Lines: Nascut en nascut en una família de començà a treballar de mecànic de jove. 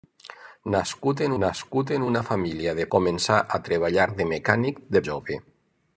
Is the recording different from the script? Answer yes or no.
no